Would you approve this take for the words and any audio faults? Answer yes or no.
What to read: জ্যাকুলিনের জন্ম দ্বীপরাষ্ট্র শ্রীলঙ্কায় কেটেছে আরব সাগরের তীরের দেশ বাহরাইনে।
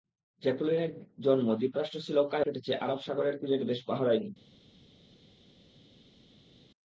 yes